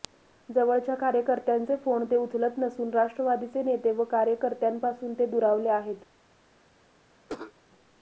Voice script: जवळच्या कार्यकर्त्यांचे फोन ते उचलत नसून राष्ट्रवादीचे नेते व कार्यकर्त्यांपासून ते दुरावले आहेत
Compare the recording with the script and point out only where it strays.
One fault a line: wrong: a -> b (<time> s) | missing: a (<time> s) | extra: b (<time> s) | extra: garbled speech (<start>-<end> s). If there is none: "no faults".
no faults